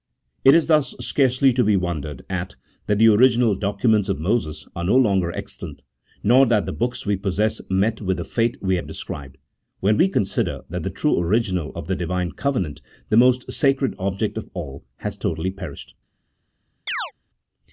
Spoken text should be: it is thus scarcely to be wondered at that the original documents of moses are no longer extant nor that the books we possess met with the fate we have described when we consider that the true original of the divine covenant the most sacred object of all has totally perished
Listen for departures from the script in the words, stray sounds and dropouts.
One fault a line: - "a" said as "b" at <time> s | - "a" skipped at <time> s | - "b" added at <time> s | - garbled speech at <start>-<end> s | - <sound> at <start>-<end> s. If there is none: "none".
- chirp at 16.9-17.1 s